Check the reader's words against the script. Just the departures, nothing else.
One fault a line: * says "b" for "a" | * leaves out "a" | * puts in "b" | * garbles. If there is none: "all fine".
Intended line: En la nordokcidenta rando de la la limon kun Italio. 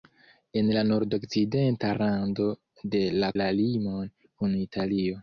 all fine